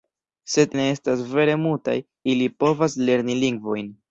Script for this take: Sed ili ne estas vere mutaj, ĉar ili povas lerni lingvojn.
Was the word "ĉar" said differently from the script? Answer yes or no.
yes